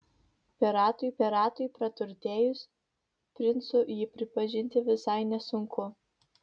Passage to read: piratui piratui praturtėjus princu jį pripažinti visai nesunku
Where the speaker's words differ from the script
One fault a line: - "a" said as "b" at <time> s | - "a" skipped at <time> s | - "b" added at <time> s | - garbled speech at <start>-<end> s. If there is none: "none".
none